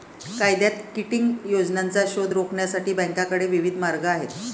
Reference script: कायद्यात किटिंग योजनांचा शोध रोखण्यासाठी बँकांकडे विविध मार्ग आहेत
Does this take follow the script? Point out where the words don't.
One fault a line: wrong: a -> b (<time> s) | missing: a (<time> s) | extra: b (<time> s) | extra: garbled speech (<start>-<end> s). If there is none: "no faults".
no faults